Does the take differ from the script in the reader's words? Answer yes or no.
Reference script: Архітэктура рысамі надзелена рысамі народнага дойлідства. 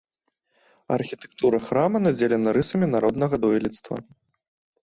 yes